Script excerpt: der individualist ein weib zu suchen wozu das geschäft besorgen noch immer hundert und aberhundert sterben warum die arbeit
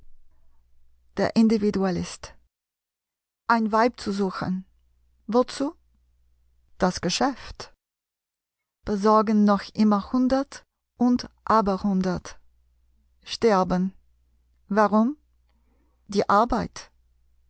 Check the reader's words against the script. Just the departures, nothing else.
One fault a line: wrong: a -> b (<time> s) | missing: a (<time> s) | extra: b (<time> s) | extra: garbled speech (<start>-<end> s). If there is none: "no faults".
no faults